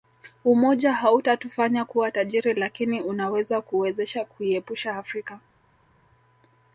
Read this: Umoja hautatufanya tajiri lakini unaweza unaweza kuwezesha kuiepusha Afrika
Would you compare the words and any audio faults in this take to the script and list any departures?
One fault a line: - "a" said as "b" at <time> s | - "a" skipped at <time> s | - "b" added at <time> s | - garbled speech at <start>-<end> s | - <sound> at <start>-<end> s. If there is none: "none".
- "kuwa" added at 1.8 s
- "unaweza" skipped at 3.6 s